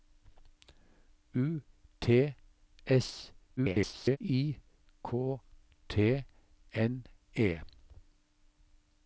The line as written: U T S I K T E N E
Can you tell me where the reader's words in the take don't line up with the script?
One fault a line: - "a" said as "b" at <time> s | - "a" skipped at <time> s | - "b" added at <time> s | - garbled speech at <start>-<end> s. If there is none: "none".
- garbled speech at 3.6-4.2 s
- "E" skipped at 6.2 s